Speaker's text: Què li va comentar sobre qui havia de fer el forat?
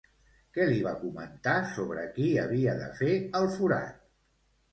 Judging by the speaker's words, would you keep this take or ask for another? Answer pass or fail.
pass